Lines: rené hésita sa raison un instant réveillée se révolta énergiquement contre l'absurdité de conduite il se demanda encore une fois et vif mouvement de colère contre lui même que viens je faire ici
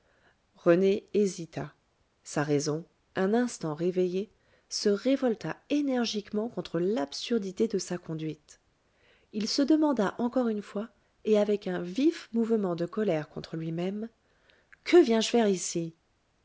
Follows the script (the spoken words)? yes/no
no